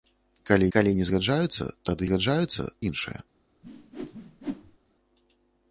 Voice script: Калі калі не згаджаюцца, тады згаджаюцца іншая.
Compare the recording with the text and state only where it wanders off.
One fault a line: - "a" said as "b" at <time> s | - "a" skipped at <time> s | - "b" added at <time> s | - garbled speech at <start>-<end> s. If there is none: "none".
none